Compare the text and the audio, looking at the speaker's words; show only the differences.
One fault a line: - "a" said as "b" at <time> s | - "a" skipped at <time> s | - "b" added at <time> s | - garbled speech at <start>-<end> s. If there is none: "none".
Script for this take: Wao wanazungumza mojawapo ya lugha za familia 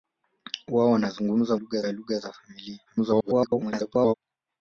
- "mojawapo" said as "lugha" at 1.5 s
- garbled speech at 2.9-4.1 s